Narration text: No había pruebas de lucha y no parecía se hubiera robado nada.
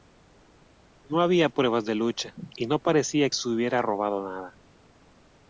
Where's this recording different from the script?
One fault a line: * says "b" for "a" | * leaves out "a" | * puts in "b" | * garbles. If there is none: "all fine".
all fine